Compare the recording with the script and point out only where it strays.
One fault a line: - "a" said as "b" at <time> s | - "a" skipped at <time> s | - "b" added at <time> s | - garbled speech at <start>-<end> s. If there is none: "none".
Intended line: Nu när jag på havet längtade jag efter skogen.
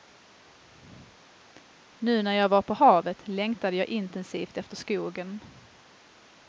- "var" added at 2.5 s
- "intensivt" added at 3.9 s